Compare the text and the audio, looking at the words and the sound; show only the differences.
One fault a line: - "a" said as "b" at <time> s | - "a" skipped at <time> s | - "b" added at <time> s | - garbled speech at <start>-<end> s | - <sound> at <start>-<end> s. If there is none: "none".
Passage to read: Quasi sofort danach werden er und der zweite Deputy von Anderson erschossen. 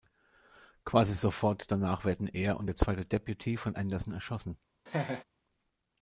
- laugh at 4.9-5.2 s